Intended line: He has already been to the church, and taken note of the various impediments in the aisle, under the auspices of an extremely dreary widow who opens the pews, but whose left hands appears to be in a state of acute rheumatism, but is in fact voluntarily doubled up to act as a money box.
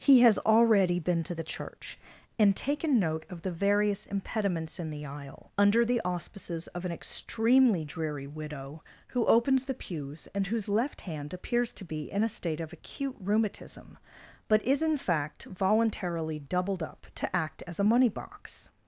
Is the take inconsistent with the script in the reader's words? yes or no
yes